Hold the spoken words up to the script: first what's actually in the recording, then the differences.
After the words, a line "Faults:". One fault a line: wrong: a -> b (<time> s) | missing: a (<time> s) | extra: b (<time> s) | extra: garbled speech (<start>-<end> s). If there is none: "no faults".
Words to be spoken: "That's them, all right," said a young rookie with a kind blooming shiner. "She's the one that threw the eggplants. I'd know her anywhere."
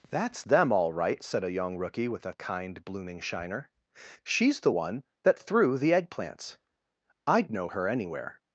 "That's them, all right," said a young rookie with a kind blooming shiner. "She's the one that threw the eggplants. I'd know her anywhere."
Faults:
no faults